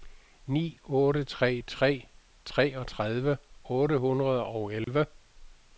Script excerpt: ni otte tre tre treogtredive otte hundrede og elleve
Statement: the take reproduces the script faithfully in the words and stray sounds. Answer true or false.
false